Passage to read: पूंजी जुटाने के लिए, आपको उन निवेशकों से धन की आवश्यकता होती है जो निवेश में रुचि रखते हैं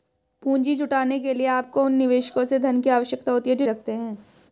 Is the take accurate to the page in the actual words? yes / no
no